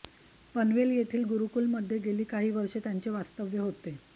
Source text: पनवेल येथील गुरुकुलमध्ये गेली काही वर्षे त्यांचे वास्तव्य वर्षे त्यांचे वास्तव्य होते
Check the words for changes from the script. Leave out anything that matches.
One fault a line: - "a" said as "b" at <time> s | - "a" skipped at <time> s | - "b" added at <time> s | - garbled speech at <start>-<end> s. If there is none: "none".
- "वर्षे त्यांचे वास्तव्य" skipped at 3.6 s